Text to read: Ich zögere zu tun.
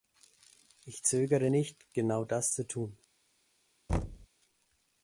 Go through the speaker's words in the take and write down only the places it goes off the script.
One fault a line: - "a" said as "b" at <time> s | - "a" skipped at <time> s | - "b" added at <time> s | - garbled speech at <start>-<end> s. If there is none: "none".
- "nicht genau das" added at 1.5 s